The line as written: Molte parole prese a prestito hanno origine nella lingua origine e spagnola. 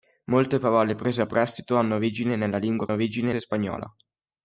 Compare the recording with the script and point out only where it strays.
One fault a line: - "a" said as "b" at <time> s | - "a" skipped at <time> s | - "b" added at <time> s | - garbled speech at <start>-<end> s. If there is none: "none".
none